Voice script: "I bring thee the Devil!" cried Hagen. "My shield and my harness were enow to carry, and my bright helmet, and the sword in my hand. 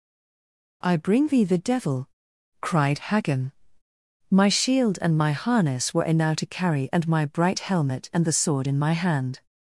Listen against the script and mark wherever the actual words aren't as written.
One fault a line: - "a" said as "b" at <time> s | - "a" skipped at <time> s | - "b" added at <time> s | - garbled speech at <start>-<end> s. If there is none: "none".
none